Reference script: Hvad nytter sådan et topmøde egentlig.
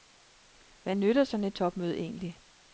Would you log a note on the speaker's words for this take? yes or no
no